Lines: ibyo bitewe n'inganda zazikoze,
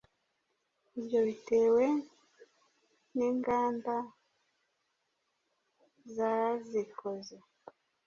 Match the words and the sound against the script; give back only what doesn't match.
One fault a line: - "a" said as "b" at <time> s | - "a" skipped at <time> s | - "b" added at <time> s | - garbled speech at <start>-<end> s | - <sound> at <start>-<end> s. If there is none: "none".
none